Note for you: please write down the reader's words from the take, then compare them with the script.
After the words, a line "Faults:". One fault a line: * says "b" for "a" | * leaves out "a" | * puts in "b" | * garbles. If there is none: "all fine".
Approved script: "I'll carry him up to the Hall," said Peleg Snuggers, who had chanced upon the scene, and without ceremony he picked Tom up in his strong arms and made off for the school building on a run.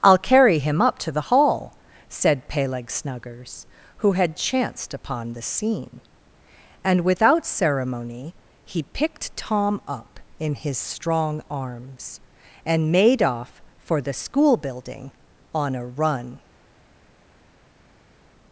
"I'll carry him up to the Hall," said Peleg Snuggers, who had chanced upon the scene, and without ceremony he picked Tom up in his strong arms and made off for the school building on a run.
Faults:
all fine